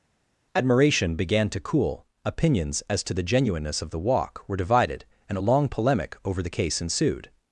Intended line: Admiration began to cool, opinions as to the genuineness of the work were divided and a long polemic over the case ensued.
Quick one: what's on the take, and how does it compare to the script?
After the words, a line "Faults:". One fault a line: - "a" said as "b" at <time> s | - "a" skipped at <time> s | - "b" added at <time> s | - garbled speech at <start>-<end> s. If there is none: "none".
Admiration began to cool, opinions as to the genuineness of the walk were divided and a long polemic over the case ensued.
Faults:
- "work" said as "walk" at 4.0 s